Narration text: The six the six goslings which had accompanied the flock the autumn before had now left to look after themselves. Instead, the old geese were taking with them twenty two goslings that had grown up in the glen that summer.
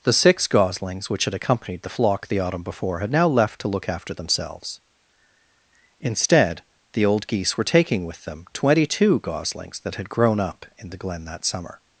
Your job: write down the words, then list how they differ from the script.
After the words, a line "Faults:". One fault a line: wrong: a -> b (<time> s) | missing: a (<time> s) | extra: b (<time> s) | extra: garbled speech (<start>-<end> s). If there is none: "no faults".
The six goslings which had accompanied the flock the autumn before had now left to look after themselves. Instead, the old geese were taking with them twenty two goslings that had grown up in the glen that summer.
Faults:
missing: the six (0.5 s)